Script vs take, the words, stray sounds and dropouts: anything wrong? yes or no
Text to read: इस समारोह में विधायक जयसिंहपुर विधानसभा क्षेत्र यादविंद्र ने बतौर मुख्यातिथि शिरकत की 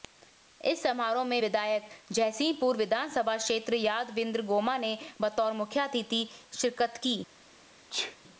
yes